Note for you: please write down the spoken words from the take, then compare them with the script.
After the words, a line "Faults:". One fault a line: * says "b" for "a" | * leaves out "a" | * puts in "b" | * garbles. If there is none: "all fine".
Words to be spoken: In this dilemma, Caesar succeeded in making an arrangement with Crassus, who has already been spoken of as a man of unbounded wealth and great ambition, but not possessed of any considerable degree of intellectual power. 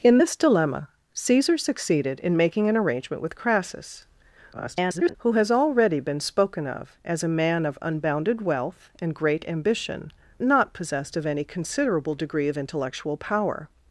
In this dilemma, Caesar succeeded in making an arrangement with Crassus, [garbled] who has already been spoken of as a man of unbounded wealth and great ambition, not possessed of any considerable degree of intellectual power.
Faults:
* garbles
* leaves out "but"